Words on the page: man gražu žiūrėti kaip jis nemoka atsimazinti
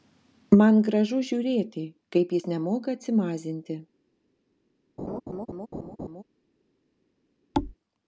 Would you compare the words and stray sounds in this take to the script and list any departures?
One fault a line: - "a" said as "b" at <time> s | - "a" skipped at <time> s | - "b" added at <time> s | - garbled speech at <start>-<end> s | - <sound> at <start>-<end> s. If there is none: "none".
- laugh at 5.0-6.2 s
- thud at 7.5-7.7 s